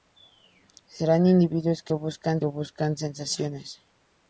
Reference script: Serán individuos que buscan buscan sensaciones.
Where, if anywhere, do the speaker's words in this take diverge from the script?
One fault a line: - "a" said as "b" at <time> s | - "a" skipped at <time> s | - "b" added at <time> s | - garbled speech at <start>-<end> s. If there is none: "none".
none